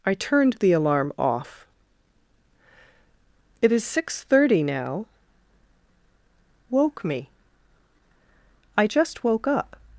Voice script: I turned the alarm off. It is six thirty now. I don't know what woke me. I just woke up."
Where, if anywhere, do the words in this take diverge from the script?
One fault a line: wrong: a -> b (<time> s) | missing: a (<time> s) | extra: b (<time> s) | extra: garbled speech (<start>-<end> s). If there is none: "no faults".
missing: I don't know what (5.0 s)